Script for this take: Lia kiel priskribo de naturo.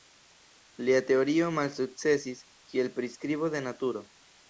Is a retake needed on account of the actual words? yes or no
yes